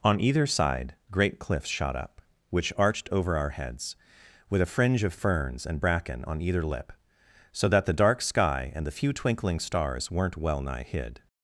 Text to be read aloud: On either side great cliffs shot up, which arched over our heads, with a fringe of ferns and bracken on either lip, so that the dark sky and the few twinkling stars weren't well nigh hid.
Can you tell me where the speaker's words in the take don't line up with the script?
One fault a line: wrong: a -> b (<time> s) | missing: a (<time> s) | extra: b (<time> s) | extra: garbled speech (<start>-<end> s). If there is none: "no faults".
no faults